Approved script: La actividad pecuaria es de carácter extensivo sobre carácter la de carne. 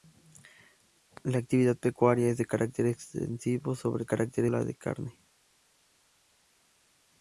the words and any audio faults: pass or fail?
pass